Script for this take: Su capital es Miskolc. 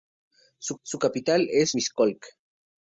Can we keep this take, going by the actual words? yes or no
no